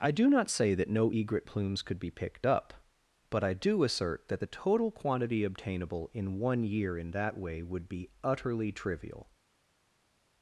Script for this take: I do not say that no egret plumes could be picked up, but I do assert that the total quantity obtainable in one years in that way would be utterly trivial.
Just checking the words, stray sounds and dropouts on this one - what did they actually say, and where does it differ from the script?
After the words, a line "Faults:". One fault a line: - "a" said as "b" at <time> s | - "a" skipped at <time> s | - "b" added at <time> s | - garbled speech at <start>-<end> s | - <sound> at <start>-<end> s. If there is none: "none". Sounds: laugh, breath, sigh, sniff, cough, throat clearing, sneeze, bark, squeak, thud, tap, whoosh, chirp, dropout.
I do not say that no egret plumes could be picked up, but I do assert that the total quantity obtainable in one year in that way would be utterly trivial.
Faults:
- "years" said as "year" at 6.6 s